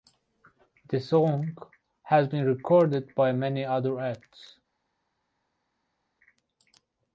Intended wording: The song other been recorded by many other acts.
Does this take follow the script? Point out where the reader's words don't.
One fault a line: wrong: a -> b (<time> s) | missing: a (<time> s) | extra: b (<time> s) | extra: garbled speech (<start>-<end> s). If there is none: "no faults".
wrong: other -> has (2.0 s)